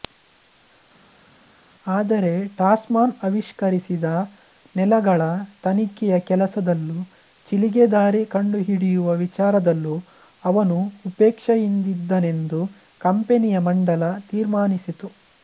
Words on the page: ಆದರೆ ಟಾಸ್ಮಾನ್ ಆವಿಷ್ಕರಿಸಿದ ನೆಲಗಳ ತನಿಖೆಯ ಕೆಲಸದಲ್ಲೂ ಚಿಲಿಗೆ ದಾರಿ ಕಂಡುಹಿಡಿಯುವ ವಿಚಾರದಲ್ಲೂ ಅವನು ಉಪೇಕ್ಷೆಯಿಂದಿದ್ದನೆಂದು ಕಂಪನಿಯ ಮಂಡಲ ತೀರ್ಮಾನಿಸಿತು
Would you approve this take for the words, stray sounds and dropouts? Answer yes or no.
yes